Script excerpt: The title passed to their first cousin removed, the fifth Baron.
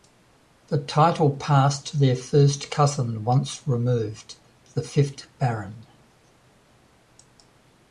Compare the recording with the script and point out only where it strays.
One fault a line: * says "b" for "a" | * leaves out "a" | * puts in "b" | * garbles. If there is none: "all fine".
* puts in "once"